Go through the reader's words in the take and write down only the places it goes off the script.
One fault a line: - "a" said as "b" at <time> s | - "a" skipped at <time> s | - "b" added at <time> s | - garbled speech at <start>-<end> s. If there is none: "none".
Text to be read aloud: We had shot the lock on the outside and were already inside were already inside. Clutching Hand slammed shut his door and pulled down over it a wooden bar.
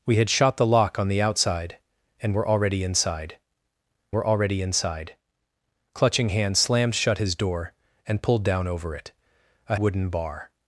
none